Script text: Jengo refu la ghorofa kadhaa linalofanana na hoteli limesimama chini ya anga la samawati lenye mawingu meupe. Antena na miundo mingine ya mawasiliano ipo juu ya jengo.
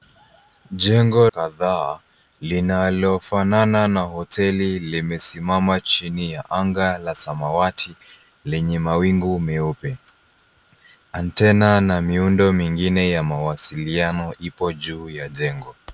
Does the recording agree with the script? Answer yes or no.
no